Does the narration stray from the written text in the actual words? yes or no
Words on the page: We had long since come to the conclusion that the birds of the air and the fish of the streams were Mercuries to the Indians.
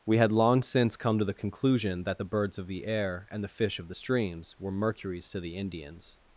no